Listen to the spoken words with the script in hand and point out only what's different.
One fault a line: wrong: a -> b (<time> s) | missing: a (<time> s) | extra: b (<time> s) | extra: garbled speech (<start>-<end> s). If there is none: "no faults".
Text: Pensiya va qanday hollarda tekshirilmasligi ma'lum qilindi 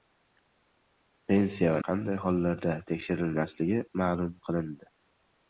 no faults